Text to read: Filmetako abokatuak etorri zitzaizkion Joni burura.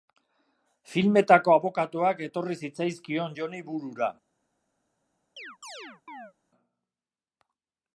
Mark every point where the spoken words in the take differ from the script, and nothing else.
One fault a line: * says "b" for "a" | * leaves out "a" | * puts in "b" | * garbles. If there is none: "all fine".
all fine